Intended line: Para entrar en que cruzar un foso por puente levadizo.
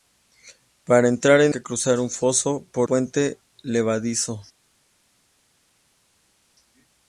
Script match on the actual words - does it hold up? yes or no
yes